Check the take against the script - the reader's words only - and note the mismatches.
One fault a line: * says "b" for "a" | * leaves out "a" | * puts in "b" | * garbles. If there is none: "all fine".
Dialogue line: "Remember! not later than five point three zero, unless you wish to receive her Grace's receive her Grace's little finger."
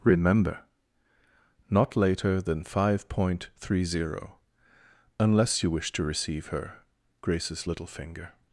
* leaves out "receive her Grace's"